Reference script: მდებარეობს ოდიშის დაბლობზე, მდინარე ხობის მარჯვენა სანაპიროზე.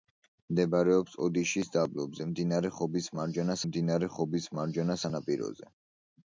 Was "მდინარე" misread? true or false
false